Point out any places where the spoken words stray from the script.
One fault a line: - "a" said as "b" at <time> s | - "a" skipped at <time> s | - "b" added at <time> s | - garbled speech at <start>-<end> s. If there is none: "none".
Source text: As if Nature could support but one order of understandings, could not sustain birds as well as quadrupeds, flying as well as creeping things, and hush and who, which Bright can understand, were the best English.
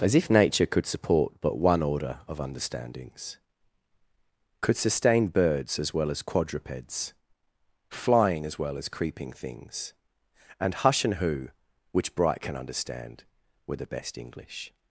- "not" skipped at 4.8 s